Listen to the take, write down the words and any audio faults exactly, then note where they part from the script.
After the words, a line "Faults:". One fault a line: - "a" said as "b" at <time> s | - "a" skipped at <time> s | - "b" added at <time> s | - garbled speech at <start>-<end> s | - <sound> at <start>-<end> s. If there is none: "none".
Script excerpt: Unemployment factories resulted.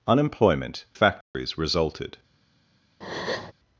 Unemployment factories resulted.
Faults:
- dropout at 1.2-1.3 s
- breath at 3.0-3.5 s